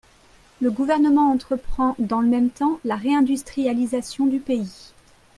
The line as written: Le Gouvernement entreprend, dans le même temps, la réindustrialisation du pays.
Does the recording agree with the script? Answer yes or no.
yes